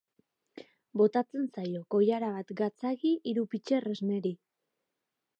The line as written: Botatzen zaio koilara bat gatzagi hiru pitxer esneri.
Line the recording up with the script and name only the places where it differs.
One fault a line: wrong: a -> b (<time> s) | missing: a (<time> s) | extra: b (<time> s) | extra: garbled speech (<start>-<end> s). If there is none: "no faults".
no faults